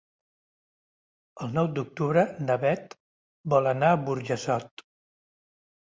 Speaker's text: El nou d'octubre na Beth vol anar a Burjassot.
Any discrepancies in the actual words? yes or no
no